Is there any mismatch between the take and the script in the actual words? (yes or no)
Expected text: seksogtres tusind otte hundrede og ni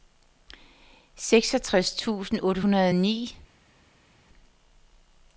no